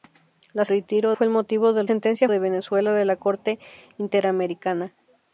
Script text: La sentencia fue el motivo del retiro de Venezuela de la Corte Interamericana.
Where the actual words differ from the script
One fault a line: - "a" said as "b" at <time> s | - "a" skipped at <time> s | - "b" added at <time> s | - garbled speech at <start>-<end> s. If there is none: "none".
- "sentencia" said as "retiro" at 0.7 s
- "retiro" said as "sentencia" at 1.8 s